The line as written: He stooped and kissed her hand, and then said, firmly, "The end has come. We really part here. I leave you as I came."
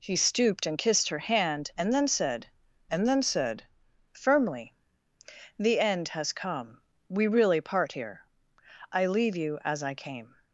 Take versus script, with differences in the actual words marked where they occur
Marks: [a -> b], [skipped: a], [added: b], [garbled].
He stooped and kissed her hand, and then said, [added: and then said] firmly, "The end has come. We really part here. I leave you as I came."